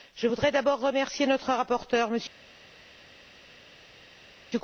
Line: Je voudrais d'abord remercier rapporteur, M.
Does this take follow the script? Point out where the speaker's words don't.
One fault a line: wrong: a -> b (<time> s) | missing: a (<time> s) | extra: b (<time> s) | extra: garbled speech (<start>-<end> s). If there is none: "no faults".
extra: notre (1.3 s)